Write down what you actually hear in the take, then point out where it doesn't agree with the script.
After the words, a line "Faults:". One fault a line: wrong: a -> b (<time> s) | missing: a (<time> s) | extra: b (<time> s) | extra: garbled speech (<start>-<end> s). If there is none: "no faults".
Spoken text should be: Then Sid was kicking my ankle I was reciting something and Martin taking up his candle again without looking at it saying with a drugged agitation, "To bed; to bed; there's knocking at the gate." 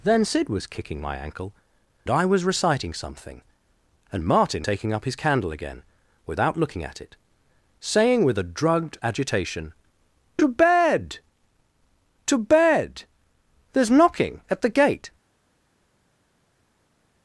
Then Sid was kicking my ankle I was reciting something and Martin taking up his candle again without looking at it saying with a drugged agitation, "To bed; to bed; there's knocking at the gate."
Faults:
no faults